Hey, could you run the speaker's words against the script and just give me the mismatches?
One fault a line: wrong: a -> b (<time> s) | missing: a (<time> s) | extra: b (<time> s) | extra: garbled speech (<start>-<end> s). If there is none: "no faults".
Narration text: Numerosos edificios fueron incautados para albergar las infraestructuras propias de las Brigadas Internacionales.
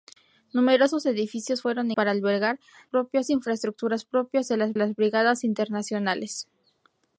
missing: incautados (1.9 s)
wrong: las -> propias (2.9 s)
extra: las (4.8 s)